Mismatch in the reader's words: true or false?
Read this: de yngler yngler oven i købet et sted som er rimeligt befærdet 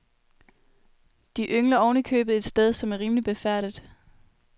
true